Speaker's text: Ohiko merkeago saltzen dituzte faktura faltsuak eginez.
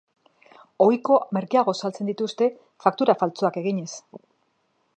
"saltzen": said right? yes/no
yes